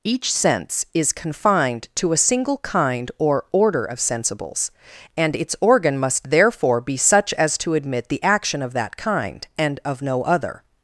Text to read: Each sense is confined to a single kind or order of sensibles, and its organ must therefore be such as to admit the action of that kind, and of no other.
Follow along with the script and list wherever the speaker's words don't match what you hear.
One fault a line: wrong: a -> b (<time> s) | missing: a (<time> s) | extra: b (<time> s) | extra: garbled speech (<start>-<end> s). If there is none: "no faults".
no faults